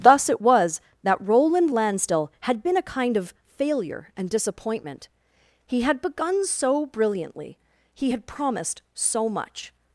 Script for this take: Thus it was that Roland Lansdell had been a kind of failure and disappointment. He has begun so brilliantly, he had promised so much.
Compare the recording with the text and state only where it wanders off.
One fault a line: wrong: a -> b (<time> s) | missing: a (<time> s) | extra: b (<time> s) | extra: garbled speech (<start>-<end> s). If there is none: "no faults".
wrong: has -> had (5.8 s)